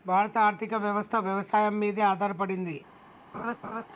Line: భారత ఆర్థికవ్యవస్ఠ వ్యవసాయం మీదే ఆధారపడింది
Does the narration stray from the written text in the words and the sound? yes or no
yes